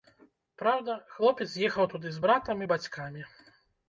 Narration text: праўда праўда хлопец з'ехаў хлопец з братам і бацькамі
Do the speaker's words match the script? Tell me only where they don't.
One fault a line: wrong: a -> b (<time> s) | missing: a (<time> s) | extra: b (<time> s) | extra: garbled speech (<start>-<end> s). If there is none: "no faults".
missing: праўда (0.9 s)
wrong: хлопец -> туды (1.9 s)